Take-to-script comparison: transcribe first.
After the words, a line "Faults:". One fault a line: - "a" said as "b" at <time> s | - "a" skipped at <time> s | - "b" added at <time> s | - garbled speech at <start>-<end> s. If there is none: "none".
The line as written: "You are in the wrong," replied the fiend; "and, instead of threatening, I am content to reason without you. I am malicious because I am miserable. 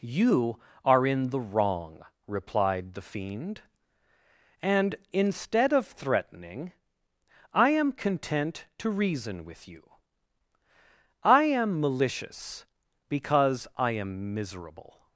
"You are in the wrong," replied the fiend; "and, instead of threatening, I am content to reason with you. I am malicious because I am miserable.
Faults:
- "without" said as "with" at 9.4 s